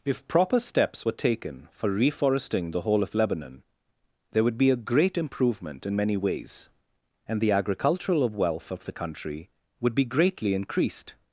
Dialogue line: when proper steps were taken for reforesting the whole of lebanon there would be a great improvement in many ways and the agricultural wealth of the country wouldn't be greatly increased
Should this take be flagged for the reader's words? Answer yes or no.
yes